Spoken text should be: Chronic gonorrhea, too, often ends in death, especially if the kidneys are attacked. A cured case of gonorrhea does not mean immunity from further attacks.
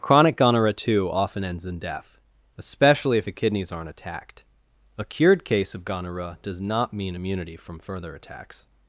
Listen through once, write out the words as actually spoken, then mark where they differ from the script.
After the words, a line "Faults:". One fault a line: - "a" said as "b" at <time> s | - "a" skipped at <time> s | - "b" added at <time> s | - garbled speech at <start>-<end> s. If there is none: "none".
Chronic gonorrhea, too, often ends in death, especially if the kidneys aren't attacked. A cured case of gonorrhea does not mean immunity from further attacks.
Faults:
- "are" said as "aren't" at 3.7 s